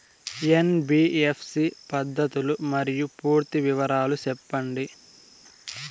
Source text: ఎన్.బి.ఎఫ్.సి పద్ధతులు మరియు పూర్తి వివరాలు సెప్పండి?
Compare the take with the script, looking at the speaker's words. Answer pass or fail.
pass